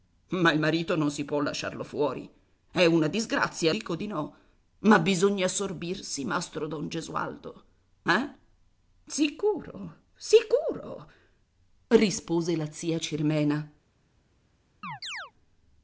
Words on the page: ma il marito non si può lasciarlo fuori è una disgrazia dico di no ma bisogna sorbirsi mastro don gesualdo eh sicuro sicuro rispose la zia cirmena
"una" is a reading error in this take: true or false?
false